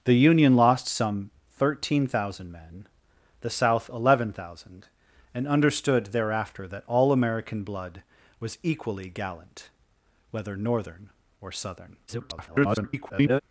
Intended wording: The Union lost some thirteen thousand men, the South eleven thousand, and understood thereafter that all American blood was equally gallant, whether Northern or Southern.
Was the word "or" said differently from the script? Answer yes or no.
no